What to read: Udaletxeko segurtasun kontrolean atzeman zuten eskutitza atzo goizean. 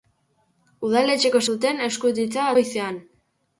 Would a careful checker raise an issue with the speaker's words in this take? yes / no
yes